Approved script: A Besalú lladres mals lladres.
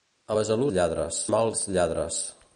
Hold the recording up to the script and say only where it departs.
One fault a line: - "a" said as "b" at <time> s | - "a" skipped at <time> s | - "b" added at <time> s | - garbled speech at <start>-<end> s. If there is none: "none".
none